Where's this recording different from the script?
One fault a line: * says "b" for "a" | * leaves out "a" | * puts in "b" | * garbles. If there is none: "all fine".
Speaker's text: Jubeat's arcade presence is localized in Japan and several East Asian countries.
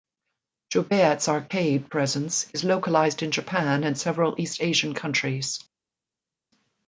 all fine